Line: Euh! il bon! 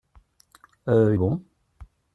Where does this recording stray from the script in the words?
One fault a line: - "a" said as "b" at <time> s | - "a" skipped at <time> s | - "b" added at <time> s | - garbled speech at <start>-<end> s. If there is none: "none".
none